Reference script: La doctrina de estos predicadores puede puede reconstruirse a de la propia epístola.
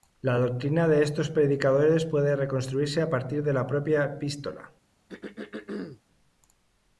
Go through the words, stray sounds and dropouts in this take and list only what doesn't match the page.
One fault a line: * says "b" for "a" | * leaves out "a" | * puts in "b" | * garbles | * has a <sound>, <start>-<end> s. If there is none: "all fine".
* leaves out "puede"
* puts in "partir"
* has a throat clearing, 5.1-6.0 s